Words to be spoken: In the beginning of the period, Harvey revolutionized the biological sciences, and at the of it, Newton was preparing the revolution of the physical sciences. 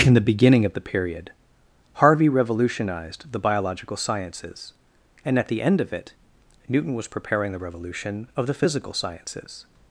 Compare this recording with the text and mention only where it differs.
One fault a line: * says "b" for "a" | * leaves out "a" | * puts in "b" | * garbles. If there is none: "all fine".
* puts in "end"